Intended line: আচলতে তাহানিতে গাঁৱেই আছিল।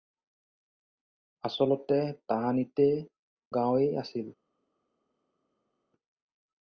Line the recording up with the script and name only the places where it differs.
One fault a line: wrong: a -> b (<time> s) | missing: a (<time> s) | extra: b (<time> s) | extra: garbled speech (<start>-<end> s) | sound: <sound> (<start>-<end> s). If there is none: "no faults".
no faults